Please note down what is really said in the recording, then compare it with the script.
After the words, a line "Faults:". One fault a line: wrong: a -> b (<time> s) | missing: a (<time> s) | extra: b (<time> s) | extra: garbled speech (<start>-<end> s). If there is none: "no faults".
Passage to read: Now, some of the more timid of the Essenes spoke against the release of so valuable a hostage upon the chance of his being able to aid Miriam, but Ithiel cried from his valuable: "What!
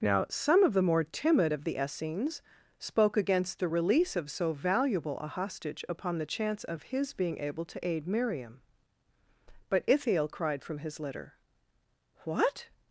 Now, some of the more timid of the Essenes spoke against the release of so valuable a hostage upon the chance of his being able to aid Miriam, but Ithiel cried from his litter: "What!
Faults:
wrong: valuable -> litter (11.0 s)